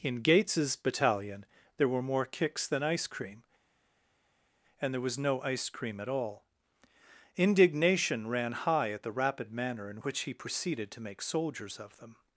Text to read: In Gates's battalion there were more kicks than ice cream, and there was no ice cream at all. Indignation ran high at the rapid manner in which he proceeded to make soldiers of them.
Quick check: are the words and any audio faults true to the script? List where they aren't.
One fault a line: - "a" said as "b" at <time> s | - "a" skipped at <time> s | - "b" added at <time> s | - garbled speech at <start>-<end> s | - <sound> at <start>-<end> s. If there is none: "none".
none